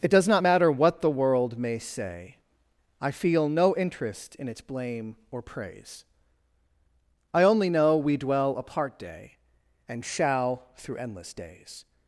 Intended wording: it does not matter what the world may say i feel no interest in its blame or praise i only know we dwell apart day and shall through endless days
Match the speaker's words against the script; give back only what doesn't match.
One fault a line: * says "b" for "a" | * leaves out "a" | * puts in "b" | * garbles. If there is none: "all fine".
all fine